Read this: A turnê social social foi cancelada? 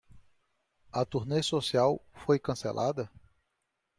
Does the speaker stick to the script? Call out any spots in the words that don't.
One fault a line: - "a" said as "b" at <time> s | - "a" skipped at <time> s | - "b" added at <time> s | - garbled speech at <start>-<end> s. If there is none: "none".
- "social" skipped at 2.0 s